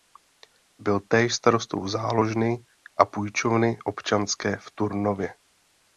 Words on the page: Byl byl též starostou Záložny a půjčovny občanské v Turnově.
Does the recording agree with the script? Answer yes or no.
no